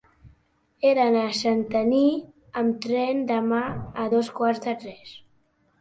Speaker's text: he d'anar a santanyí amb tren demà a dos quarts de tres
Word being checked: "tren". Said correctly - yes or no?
yes